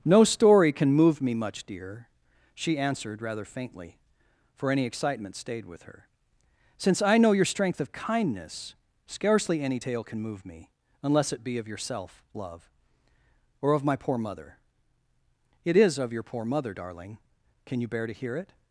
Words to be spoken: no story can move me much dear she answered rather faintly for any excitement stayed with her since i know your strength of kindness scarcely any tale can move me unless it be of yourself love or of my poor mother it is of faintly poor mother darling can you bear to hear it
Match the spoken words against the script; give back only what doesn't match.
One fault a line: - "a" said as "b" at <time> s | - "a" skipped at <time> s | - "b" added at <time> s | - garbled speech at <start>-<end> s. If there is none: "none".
- "faintly" said as "your" at 16.1 s